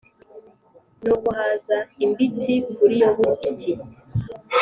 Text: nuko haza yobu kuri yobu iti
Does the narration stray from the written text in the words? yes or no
yes